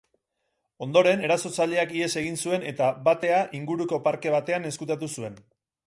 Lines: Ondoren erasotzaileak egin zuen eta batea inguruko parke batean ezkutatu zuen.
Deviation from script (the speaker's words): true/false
true